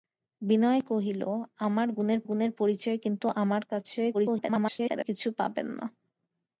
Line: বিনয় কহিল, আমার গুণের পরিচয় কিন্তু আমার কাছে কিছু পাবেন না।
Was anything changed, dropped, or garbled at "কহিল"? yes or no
no